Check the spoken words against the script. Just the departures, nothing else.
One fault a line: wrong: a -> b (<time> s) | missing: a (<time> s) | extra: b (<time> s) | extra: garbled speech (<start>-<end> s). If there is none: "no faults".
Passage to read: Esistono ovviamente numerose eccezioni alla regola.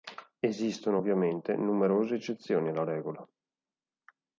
no faults